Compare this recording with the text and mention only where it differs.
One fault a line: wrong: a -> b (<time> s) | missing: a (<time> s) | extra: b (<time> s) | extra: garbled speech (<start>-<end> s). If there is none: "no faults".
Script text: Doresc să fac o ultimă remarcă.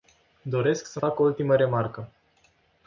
no faults